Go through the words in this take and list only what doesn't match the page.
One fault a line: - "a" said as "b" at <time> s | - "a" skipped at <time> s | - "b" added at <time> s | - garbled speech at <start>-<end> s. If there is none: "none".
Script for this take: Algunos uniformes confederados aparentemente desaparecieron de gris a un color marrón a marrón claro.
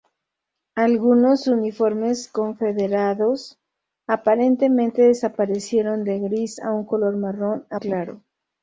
- "marrón" skipped at 7.8 s